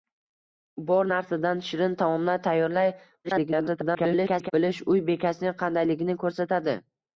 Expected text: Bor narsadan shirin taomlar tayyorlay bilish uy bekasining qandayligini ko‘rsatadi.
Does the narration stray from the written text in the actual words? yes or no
yes